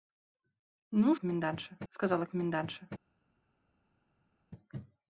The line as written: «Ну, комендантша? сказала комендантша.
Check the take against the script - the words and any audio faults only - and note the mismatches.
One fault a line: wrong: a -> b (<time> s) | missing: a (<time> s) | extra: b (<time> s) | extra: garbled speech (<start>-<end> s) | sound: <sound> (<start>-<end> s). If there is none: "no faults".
no faults